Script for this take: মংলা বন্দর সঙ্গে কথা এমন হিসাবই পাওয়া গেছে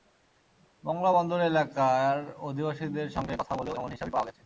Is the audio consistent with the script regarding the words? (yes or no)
no